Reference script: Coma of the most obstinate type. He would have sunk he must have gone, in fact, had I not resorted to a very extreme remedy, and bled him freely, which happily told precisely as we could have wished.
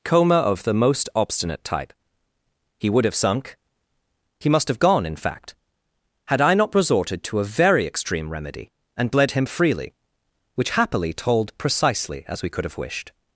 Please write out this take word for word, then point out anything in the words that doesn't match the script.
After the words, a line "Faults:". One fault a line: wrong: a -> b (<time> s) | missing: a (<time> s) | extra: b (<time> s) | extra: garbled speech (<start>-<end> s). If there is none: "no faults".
Coma of the most obstinate type. He would have sunk he must have gone, in fact, had I not resorted to a very extreme remedy, and bled him freely, which happily told precisely as we could have wished.
Faults:
no faults